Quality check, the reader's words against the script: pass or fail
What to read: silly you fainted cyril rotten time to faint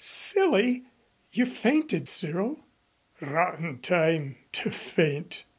pass